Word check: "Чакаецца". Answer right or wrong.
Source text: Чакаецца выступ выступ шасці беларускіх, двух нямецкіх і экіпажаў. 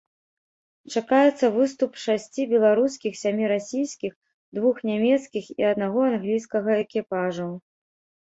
right